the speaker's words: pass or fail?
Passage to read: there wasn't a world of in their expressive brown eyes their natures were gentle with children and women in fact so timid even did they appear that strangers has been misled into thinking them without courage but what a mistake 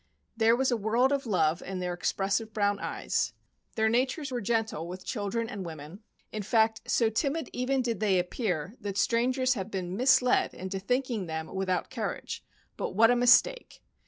fail